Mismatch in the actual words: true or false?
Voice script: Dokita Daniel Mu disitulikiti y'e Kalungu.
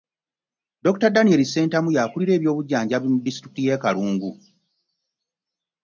true